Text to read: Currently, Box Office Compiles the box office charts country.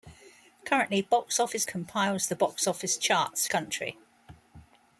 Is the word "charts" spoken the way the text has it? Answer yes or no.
yes